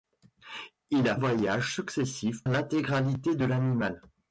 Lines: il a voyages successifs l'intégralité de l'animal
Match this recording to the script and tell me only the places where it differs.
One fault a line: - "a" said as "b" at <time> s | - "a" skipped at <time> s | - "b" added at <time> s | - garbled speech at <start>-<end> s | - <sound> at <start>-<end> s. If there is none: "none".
none